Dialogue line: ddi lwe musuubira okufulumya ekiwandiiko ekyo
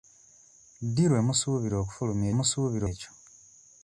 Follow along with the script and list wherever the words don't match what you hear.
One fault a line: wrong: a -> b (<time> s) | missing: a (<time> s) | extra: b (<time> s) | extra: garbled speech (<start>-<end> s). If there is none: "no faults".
wrong: ekiwandiiko -> musuubira (2.4 s)